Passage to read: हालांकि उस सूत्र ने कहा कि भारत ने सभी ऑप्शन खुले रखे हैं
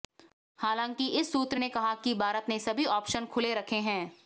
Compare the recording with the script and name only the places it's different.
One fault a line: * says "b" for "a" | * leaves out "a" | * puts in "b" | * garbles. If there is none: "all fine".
* says "इस" for "उस"